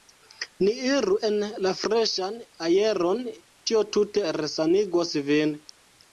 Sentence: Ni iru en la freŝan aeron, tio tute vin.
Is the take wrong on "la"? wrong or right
right